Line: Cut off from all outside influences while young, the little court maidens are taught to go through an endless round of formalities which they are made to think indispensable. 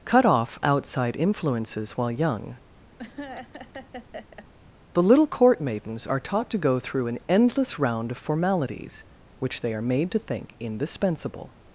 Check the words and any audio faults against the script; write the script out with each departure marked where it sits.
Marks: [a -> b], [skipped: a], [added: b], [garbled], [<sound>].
Cut off [skipped: from all] outside influences while young, [laugh] the little court maidens are taught to go through an endless round of formalities which they are made to think indispensable.